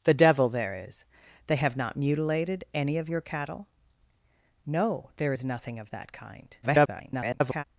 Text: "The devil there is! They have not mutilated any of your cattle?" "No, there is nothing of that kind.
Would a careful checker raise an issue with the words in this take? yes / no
yes